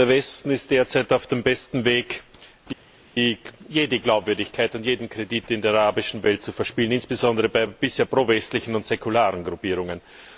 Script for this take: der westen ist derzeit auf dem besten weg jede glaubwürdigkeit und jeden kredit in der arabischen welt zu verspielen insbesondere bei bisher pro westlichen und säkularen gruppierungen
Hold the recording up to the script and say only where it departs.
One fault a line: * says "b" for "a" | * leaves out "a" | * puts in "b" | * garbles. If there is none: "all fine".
all fine